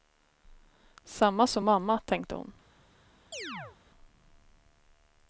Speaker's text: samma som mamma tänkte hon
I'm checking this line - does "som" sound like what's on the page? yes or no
yes